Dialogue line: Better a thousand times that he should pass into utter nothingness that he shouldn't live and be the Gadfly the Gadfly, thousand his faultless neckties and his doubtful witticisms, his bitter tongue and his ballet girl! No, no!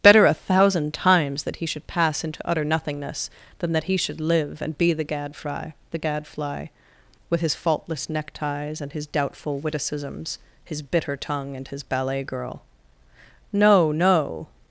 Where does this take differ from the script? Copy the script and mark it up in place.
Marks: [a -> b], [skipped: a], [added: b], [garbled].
Better a thousand times that he should pass into utter nothingness [added: than] that he [shouldn't -> should] live and be the Gadfly the Gadfly, [thousand -> with] his faultless neckties and his doubtful witticisms, his bitter tongue and his ballet girl! No, no!